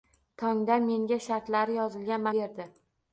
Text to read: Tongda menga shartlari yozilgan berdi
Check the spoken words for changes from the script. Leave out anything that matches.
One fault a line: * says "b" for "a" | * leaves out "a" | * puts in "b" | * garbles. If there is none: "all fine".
all fine